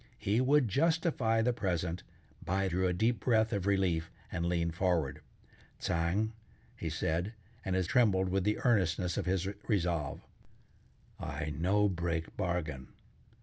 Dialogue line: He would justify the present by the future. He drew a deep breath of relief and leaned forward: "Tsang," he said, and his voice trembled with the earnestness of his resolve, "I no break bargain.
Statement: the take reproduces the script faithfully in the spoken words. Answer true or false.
false